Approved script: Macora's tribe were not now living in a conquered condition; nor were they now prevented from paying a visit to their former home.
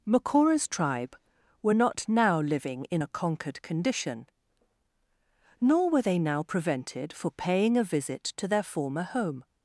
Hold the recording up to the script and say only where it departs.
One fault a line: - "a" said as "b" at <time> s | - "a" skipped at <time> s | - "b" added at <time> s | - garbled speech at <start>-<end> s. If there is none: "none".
- "from" said as "for" at 7.1 s